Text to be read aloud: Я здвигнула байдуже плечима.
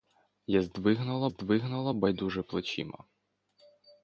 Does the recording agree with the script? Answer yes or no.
no